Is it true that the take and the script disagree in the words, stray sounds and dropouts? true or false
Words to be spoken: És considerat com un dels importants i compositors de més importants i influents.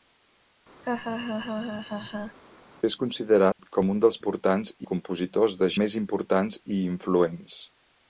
true